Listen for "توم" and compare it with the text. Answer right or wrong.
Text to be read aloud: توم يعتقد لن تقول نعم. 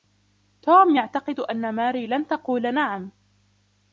right